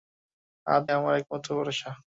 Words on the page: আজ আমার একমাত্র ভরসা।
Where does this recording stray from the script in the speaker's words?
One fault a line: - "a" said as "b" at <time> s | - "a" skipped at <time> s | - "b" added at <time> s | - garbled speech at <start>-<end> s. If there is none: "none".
none